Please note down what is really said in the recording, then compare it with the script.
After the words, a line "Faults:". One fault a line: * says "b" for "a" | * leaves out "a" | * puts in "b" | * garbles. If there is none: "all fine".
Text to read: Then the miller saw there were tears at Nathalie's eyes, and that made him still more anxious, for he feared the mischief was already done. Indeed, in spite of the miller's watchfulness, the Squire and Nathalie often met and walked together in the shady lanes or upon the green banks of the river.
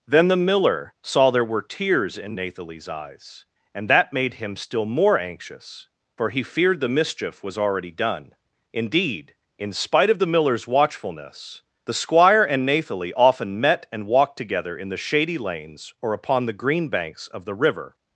Then the miller saw there were tears in Nathalie's eyes, and that made him still more anxious, for he feared the mischief was already done. Indeed, in spite of the miller's watchfulness, the Squire and Nathalie often met and walked together in the shady lanes or upon the green banks of the river.
Faults:
* says "in" for "at"